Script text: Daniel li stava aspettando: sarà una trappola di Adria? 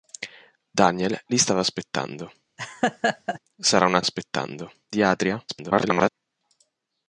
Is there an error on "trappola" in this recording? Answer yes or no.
yes